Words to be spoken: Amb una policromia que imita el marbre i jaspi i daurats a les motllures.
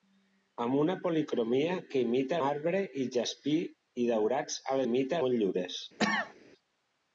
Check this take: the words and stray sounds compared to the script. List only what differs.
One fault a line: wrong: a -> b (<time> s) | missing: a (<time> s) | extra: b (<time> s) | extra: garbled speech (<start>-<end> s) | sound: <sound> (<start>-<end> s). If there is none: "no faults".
missing: el (2.4 s)
wrong: les -> imita (4.9 s)
sound: cough (6.0-6.3 s)